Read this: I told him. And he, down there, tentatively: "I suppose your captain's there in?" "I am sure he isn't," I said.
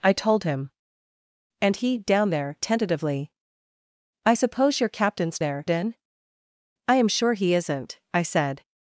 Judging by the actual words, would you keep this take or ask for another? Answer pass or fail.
pass